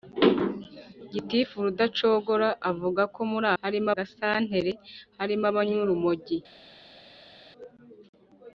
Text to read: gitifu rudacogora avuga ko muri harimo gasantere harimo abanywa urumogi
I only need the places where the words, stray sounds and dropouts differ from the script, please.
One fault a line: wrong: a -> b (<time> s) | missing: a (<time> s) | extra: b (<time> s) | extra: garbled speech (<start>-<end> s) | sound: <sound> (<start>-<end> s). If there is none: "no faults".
no faults